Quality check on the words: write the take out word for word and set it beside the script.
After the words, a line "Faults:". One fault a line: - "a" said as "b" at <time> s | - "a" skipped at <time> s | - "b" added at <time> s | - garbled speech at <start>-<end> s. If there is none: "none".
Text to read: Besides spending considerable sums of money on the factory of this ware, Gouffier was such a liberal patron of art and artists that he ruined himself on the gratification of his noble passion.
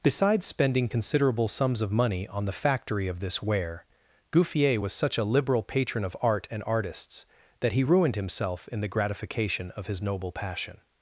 Besides spending considerable sums of money on the factory of this ware, Gouffier was such a liberal patron of art and artists that he ruined himself in the gratification of his noble passion.
Faults:
- "on" said as "in" at 8.7 s